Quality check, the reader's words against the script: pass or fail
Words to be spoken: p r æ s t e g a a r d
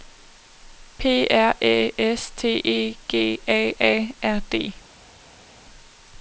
pass